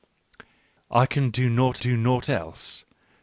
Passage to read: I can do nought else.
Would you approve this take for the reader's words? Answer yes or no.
no